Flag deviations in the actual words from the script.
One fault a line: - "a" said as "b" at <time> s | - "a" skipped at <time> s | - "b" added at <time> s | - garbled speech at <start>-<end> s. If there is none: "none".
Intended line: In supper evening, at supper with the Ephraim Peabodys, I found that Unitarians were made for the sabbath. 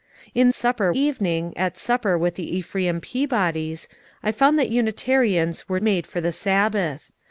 none